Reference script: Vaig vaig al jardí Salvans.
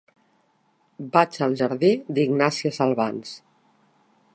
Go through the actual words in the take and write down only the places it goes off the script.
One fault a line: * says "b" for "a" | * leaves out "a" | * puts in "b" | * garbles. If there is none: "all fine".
* leaves out "vaig"
* puts in "d'Ignàsia"